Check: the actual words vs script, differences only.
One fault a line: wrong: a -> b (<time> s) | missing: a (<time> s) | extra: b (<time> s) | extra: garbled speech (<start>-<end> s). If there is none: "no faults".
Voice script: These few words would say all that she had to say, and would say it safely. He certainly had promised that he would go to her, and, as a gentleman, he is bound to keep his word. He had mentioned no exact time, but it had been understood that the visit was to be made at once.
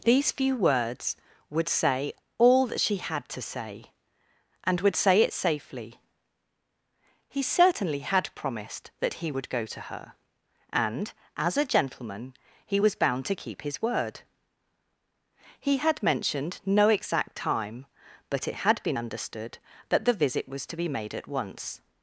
wrong: is -> was (12.8 s)